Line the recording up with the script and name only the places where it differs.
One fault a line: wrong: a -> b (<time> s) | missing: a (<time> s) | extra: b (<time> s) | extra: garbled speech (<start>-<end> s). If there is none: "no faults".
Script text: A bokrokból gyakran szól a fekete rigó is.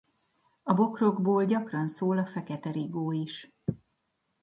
no faults